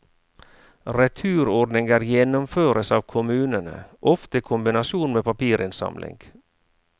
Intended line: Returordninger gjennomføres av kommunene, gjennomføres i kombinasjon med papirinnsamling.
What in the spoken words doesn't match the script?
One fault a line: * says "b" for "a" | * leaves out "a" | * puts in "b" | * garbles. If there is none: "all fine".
* says "ofte" for "gjennomføres"